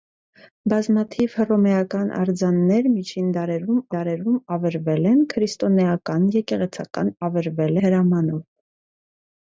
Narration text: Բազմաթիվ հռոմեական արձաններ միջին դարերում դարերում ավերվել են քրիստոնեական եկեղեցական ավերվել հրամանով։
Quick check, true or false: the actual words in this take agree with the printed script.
true